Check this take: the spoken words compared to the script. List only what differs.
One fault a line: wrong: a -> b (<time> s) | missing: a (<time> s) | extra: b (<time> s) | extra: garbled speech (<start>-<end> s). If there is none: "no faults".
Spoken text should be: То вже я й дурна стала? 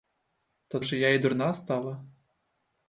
no faults